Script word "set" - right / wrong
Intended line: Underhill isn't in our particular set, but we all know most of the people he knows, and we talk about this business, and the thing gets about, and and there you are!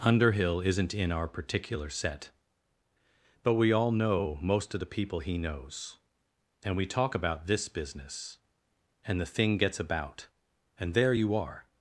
right